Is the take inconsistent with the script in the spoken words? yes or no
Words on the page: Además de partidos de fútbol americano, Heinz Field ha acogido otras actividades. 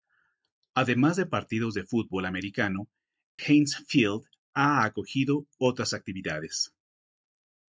no